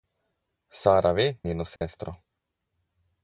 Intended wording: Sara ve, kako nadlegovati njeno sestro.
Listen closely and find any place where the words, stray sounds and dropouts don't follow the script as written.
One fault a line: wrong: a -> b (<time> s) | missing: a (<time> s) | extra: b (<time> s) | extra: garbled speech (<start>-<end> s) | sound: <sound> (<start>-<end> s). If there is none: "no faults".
missing: kako nadlegovati (1.4 s)
sound: dropout (1.8-1.8 s)